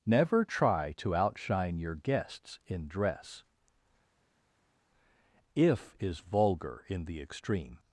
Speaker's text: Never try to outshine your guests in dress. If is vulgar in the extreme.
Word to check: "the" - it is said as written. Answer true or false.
true